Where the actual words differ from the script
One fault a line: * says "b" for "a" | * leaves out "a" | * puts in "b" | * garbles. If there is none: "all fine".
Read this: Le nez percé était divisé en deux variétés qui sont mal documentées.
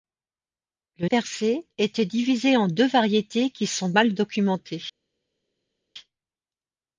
* leaves out "nez"